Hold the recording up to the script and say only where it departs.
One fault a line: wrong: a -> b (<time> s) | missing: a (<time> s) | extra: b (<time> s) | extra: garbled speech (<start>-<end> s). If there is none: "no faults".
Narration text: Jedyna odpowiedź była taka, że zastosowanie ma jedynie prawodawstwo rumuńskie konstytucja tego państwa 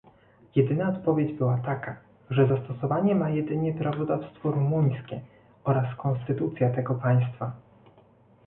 extra: oraz (5.6 s)